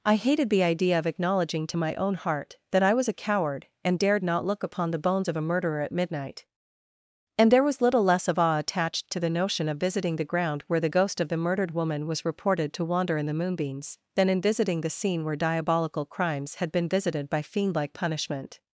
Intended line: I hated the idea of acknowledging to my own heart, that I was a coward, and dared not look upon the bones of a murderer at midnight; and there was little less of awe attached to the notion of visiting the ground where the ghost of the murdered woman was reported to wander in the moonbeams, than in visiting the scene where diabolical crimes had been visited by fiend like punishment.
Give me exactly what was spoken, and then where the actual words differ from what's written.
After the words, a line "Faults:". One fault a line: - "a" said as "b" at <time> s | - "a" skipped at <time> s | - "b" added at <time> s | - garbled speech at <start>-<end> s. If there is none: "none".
I hated the idea of acknowledging to my own heart, that I was a coward, and dared not look upon the bones of a murderer at midnight; and there was little less of awe attached to the notion of visiting the ground where the ghost of the murdered woman was reported to wander in the moonbeams, than in visiting the scene where diabolical crimes had been visited by fiend like punishment.
Faults:
none